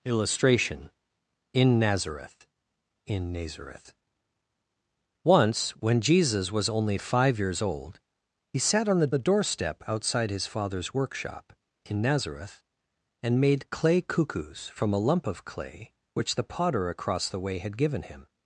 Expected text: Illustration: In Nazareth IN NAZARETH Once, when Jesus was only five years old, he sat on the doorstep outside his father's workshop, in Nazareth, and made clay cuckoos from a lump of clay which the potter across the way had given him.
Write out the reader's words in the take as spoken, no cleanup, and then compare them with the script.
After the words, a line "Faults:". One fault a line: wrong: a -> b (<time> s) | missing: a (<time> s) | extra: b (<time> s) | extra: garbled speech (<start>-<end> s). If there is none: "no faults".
Illustration: In Nazareth IN NAZARETH Once, when Jesus was only five years old, he sat on the the doorstep outside his father's workshop, in Nazareth, and made clay cuckoos from a lump of clay which the potter across the way had given him.
Faults:
extra: the (9.1 s)